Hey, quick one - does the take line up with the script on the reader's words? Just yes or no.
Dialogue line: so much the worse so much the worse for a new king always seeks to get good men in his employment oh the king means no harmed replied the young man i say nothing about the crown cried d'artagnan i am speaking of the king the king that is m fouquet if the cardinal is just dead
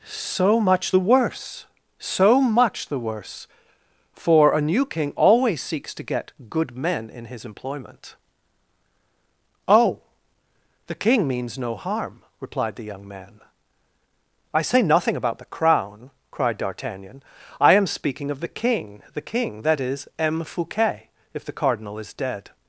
no